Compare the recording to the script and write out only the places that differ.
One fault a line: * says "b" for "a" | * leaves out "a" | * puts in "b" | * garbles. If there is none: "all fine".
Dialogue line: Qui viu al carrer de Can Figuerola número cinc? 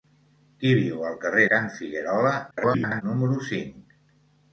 * leaves out "de"
* garbles